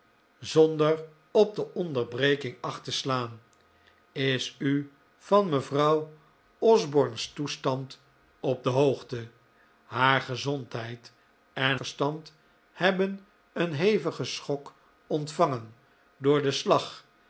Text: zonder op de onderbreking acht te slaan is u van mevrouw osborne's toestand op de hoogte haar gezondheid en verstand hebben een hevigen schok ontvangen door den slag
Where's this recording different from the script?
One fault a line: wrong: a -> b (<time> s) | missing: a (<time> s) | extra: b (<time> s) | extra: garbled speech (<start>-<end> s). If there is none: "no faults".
no faults